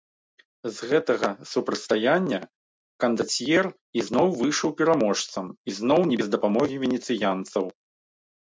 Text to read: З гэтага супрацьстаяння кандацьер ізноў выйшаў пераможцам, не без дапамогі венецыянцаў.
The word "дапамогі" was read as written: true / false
true